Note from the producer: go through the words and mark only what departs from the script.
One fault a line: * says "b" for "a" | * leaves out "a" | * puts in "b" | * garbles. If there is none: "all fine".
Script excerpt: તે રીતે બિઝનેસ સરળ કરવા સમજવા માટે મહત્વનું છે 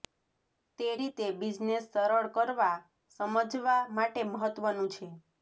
all fine